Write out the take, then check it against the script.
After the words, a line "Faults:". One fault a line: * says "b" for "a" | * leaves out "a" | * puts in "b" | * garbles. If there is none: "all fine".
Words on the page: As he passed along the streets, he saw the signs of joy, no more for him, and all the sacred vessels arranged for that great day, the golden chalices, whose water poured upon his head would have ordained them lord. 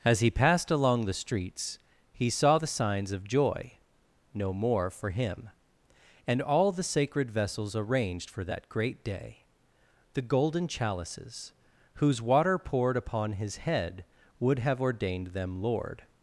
As he passed along the streets, he saw the signs of joy, no more for him, and all the sacred vessels arranged for that great day, the golden chalices, whose water poured upon his head would have ordained them lord.
Faults:
all fine